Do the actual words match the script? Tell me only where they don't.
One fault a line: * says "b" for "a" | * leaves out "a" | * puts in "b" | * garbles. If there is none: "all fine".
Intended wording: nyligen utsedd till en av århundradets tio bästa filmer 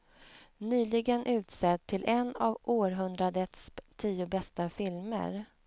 all fine